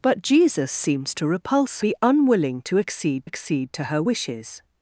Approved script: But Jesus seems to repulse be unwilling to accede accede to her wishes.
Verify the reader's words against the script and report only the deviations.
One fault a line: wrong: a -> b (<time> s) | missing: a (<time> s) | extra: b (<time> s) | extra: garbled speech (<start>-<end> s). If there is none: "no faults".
no faults